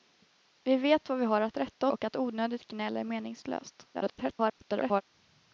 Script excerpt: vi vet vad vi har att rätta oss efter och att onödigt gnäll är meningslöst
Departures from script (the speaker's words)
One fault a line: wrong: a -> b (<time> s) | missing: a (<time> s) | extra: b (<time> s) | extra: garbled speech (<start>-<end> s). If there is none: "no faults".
missing: oss efter (1.9 s)
extra: garbled speech (3.9-5.0 s)